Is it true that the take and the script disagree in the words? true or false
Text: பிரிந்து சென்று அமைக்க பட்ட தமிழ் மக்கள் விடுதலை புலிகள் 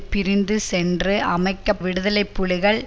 true